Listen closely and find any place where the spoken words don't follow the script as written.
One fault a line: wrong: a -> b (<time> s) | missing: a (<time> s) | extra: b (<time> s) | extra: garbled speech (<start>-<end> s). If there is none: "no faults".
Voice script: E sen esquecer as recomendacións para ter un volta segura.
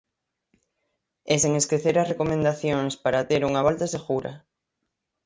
wrong: un -> unha (3.5 s)